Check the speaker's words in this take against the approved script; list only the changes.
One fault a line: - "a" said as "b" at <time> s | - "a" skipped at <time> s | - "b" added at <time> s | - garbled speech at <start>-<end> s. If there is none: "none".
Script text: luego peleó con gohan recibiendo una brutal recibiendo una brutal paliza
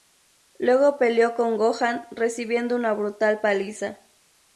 - "recibiendo una brutal" skipped at 3.4 s